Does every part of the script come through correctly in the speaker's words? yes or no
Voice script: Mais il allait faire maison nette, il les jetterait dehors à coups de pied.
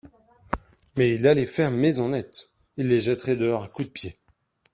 yes